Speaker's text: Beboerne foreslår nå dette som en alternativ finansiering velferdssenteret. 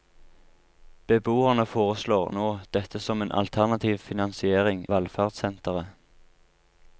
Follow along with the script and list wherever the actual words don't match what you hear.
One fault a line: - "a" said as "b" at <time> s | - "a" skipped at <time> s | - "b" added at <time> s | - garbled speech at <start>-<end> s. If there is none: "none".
none